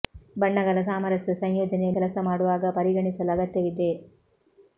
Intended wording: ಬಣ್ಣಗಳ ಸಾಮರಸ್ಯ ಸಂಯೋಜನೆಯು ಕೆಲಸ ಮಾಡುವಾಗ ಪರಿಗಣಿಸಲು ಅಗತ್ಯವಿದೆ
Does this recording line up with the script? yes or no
yes